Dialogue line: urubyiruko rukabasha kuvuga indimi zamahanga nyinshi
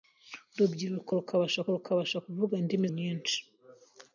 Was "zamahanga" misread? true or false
true